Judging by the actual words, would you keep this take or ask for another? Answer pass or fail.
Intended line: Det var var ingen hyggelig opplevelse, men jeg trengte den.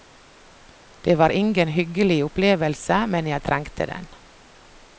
fail